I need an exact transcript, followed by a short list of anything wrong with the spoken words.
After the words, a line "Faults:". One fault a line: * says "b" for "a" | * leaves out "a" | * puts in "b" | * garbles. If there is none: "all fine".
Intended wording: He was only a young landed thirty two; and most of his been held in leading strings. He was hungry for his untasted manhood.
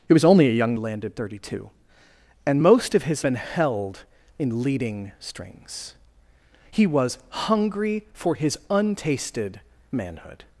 He was only a young landed thirty two; and most of his been held in leading strings. He was hungry for his untasted manhood.
Faults:
all fine